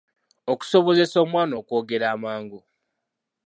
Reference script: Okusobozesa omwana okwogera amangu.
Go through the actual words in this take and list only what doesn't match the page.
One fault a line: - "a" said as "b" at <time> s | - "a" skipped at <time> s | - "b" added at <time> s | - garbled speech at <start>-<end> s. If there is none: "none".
none